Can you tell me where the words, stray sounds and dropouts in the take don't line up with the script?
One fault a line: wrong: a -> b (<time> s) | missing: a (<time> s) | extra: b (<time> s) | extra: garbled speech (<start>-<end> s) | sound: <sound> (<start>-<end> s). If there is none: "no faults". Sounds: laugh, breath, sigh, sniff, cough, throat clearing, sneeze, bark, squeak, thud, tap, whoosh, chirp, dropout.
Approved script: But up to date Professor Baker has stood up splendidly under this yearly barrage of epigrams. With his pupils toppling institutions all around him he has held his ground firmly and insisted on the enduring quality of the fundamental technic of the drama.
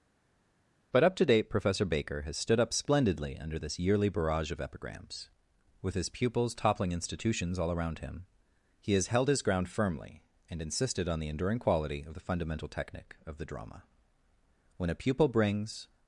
extra: When a pupil brings (14.8 s)